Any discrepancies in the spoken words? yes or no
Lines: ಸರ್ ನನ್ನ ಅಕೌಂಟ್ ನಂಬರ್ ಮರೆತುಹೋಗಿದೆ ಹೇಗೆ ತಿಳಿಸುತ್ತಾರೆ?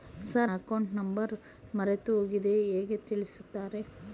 yes